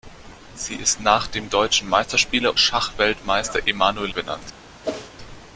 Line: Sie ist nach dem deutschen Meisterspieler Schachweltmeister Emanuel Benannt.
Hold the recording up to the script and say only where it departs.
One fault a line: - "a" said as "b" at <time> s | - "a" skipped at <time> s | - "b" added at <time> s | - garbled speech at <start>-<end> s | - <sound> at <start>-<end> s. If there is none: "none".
- whoosh at 4.8-5.1 s